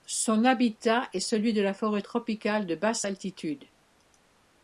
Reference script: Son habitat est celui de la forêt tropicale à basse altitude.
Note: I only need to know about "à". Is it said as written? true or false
false